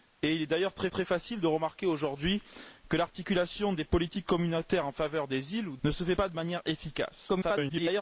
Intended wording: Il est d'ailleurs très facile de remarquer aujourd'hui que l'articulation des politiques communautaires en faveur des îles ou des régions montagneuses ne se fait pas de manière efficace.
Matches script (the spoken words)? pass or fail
fail